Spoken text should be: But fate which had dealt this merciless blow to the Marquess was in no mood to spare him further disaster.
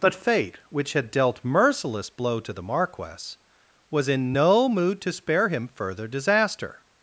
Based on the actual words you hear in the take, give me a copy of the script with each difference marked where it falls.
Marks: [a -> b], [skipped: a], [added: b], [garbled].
But fate which had dealt [skipped: this] merciless blow to the Marquess was in no mood to spare him further disaster.